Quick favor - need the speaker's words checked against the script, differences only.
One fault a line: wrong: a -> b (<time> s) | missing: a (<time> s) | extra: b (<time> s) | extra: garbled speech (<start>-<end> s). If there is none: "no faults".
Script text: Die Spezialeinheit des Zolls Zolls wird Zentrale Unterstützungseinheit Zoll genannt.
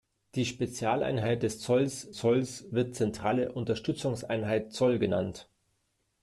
no faults